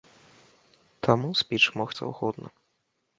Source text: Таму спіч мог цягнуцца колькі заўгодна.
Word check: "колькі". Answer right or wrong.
wrong